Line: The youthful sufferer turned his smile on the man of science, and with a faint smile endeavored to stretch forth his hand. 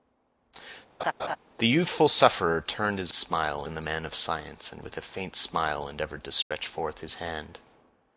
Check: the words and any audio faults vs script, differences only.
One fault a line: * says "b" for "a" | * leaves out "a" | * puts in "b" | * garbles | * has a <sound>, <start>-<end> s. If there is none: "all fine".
* has a laugh, 1.0-1.4 s
* has a dropout, 6.4-6.5 s